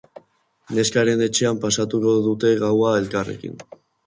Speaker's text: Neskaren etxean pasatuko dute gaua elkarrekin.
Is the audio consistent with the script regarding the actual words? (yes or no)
yes